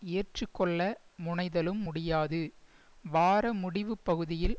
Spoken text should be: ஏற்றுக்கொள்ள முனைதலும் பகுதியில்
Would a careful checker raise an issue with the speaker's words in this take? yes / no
yes